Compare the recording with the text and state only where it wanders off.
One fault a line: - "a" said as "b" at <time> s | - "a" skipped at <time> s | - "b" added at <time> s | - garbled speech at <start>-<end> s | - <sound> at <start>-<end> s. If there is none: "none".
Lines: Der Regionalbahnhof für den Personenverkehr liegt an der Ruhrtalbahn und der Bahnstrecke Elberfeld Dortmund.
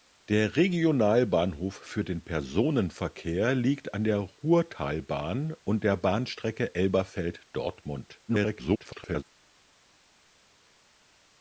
- garbled speech at 8.3-9.2 s